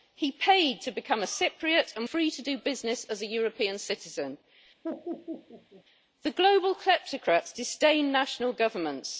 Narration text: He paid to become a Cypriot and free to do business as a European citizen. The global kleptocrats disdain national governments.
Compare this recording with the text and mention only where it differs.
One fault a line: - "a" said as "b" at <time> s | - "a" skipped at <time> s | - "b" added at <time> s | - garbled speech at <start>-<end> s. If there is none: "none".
none